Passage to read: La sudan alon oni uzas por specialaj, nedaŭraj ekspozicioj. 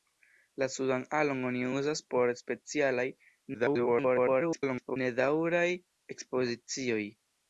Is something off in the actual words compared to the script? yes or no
yes